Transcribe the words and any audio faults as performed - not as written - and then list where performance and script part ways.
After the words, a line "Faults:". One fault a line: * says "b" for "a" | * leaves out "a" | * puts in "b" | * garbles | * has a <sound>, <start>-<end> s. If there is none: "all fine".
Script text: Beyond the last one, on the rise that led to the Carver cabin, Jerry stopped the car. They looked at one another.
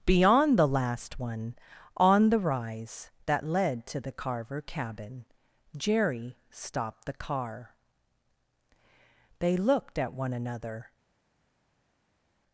Beyond the last one, on the rise that led to the Carver cabin, Jerry stopped the car. They looked at one another.
Faults:
all fine